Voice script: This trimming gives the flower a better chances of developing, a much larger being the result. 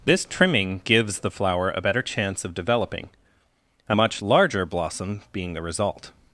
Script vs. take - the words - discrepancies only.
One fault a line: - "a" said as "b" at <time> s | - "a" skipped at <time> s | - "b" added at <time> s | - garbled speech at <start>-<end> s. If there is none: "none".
- "chances" said as "chance" at 2.0 s
- "blossom" added at 4.6 s